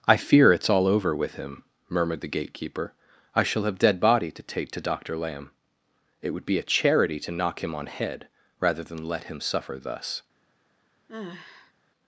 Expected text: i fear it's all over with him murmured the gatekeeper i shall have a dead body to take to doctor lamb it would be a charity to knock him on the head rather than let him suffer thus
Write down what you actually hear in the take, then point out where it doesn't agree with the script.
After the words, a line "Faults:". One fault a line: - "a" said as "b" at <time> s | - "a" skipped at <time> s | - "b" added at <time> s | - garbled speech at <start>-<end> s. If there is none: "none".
i fear it's all over with him murmured the gatekeeper i shall have dead body to take to doctor lamb it would be a charity to knock him on head rather than let him suffer thus
Faults:
- "a" skipped at 3.8 s
- "the" skipped at 7.9 s